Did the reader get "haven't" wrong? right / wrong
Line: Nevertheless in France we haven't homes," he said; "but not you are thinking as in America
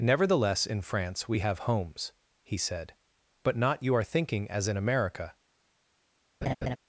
wrong